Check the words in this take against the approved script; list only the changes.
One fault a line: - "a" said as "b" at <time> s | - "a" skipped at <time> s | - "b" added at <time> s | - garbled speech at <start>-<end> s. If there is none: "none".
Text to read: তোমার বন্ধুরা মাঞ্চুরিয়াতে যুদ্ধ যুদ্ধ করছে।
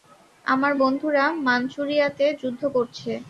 - "তোমার" said as "আমার" at 0.5 s
- "যুদ্ধ" skipped at 2.6 s